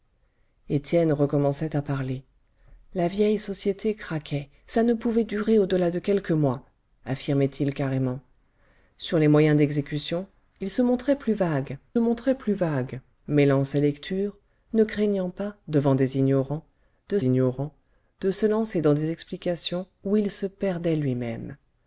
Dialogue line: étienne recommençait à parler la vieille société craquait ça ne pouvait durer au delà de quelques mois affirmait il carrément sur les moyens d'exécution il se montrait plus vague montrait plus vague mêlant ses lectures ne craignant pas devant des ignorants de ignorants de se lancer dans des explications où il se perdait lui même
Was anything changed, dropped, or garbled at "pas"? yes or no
no